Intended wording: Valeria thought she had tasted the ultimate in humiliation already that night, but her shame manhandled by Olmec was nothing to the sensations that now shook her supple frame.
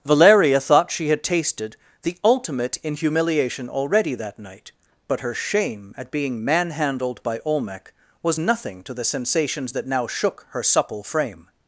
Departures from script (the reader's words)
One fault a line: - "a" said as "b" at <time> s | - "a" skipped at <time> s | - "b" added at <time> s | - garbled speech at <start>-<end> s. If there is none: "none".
- "at being" added at 6.0 s